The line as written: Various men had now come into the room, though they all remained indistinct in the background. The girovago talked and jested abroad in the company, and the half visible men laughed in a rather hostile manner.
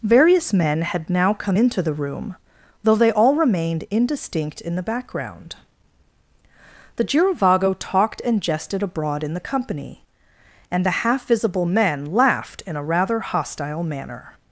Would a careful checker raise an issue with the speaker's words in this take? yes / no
no